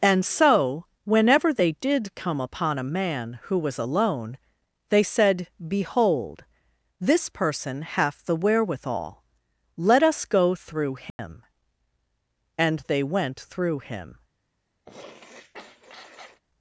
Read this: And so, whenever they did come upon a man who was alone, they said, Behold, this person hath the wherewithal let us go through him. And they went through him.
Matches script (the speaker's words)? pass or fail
pass